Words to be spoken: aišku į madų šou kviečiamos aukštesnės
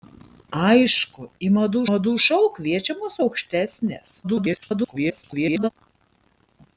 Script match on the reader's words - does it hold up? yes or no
no